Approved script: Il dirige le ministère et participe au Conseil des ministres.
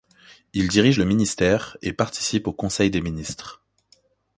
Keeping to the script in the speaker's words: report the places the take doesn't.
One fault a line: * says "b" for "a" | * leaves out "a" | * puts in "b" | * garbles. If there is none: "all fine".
all fine